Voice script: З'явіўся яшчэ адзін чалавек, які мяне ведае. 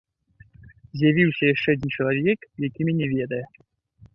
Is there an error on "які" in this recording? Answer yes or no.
no